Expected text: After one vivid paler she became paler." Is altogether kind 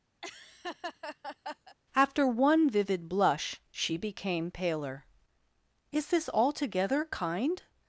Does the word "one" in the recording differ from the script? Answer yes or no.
no